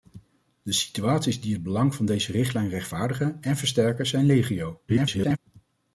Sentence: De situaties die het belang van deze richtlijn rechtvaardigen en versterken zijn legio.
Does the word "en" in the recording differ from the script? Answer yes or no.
no